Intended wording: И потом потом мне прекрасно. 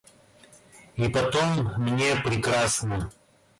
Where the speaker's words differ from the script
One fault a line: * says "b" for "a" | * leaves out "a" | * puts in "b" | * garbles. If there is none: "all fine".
* leaves out "потом"